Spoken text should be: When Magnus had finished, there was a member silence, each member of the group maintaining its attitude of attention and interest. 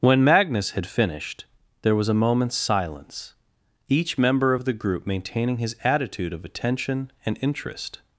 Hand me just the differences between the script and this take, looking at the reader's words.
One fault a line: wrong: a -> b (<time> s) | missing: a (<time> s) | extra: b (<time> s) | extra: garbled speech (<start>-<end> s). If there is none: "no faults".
wrong: member -> moment's (2.1 s)
wrong: its -> his (5.6 s)